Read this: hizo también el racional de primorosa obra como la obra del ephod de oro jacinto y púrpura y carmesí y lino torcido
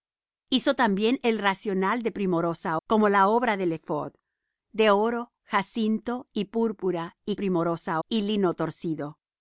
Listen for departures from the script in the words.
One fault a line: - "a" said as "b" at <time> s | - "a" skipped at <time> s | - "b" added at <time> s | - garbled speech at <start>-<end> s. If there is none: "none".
- "obra" skipped at 2.8 s
- "carmesí" said as "primorosa" at 7.3 s